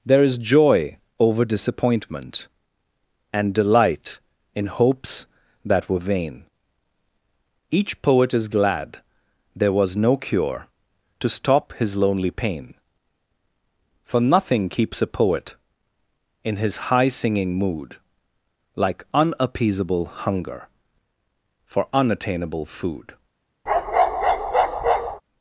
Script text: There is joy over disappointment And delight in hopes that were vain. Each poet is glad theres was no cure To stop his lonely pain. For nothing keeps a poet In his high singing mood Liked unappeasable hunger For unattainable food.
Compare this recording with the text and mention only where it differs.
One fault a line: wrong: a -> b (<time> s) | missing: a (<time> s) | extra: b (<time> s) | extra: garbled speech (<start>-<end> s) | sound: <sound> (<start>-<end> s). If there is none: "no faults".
wrong: theres -> there (9.5 s)
wrong: Liked -> Like (18.8 s)
sound: bark (23.7-25.2 s)